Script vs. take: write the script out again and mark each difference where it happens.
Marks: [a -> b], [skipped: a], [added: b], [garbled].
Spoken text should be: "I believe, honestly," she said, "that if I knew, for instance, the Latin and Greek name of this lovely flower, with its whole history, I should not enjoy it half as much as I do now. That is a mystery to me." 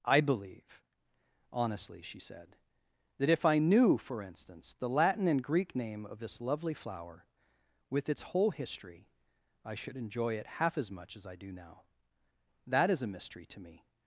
"I believe, honestly," she said, "that if I knew, for instance, the Latin and Greek name of this lovely flower, with its whole history, I should [skipped: not] enjoy it half as much as I do now. That is a mystery to me."